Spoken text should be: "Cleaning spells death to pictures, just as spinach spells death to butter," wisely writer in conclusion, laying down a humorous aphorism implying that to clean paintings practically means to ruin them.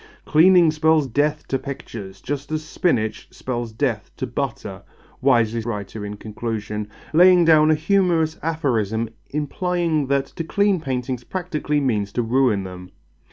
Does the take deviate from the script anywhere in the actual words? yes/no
no